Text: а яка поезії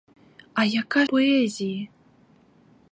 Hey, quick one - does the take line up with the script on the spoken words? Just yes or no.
yes